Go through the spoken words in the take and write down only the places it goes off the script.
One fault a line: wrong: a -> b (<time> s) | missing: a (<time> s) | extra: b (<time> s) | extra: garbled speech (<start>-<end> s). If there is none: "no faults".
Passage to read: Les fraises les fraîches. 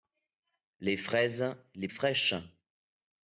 no faults